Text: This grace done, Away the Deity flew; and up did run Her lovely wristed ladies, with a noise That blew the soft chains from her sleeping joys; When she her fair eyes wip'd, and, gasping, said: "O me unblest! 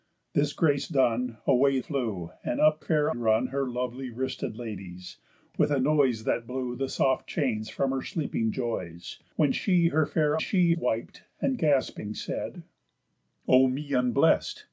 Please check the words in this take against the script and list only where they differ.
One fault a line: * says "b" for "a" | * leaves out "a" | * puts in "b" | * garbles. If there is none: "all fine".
* leaves out "the Deity"
* says "fair" for "did"
* says "she" for "eyes"